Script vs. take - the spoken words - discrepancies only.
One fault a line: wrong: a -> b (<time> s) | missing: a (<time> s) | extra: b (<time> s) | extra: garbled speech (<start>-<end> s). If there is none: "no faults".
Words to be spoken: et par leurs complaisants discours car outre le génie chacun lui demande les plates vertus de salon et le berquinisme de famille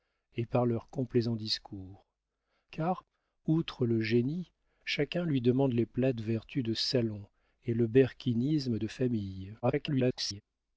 extra: garbled speech (9.6-10.4 s)